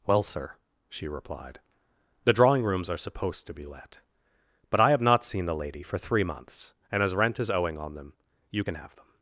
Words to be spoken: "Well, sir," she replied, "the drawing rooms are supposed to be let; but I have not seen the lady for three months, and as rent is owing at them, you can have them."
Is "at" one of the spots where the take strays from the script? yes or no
yes